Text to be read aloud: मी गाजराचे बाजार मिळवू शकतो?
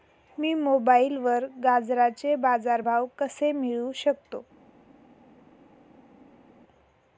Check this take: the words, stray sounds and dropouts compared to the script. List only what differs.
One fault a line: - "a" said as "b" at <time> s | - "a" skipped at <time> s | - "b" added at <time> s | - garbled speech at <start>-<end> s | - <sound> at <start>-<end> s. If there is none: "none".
- "मोबाईलवर" added at 0.5 s
- "भाव कसे" added at 2.8 s